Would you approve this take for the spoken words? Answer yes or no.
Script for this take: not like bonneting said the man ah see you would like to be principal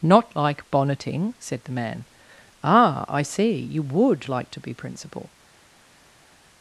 no